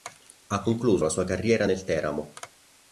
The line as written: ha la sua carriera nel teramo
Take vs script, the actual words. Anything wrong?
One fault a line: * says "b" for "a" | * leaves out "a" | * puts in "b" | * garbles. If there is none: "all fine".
* puts in "concluso"